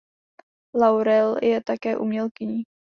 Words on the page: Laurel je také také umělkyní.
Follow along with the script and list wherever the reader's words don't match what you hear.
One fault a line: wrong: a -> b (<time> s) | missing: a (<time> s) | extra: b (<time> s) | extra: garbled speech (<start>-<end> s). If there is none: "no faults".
missing: také (2.0 s)